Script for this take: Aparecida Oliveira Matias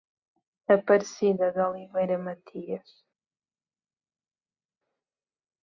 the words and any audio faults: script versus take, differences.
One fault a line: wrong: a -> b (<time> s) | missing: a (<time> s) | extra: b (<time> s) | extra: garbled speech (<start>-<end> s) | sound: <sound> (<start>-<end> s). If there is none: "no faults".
extra: de (1.5 s)